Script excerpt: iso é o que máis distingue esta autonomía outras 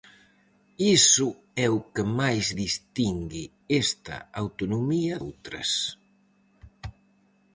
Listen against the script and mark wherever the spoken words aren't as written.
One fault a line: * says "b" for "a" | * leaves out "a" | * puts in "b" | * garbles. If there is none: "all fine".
all fine